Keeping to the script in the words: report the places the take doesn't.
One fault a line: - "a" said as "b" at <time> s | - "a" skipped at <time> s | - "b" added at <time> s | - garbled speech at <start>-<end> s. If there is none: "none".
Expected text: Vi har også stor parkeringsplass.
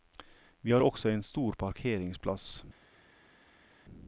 - "en" added at 1.1 s